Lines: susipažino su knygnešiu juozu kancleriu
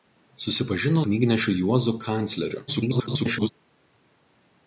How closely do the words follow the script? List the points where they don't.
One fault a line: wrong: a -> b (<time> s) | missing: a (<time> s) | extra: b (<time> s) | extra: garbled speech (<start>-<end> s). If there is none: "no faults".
missing: su (1.1 s)
extra: garbled speech (2.7-3.5 s)